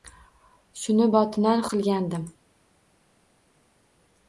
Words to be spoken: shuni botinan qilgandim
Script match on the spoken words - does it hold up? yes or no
yes